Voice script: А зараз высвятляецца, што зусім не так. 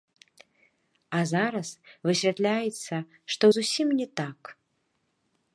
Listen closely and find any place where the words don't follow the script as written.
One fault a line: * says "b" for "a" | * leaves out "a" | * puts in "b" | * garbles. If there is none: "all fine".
all fine